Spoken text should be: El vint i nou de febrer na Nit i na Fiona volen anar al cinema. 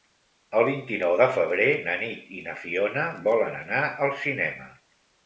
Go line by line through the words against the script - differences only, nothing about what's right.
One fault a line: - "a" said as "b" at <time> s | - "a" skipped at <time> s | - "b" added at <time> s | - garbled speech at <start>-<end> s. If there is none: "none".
none